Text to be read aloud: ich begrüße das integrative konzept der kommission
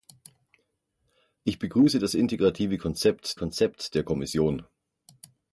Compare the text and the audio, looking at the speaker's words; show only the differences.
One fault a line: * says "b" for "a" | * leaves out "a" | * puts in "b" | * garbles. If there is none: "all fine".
* puts in "konzept"